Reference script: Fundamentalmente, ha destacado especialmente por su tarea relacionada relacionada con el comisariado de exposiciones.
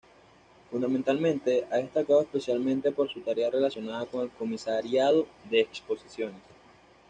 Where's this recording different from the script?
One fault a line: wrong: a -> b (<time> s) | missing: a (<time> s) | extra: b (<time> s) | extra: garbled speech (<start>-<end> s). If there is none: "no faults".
missing: relacionada (4.1 s)